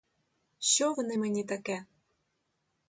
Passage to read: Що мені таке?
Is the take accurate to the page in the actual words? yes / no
no